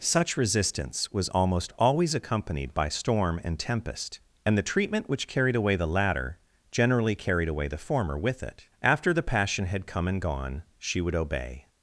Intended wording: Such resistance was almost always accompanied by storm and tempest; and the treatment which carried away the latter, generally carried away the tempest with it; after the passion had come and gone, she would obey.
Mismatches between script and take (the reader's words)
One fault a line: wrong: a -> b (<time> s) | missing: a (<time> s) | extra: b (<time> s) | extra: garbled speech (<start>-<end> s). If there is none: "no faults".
wrong: tempest -> former (7.8 s)